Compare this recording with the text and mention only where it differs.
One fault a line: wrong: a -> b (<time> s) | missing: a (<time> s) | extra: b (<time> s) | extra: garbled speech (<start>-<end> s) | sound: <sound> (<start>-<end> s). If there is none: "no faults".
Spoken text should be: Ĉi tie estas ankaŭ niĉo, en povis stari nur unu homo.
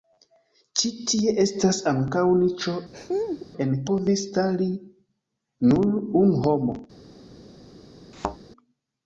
sound: laugh (2.9-3.5 s)
sound: thud (8.1-8.4 s)